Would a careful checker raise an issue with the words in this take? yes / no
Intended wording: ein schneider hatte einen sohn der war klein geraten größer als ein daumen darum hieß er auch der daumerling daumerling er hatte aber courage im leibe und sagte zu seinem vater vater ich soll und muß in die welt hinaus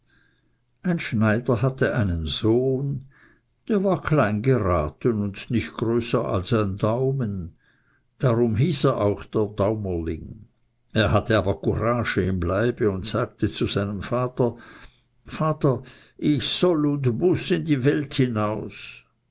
yes